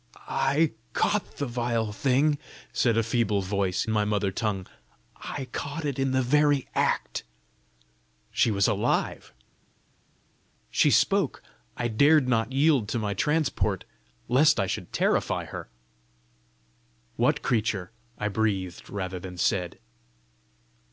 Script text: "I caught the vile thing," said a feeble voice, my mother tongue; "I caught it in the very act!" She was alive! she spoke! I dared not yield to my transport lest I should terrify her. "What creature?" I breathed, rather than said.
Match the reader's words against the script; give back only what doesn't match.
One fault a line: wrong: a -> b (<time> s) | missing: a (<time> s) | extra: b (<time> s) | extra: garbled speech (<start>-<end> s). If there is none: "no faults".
no faults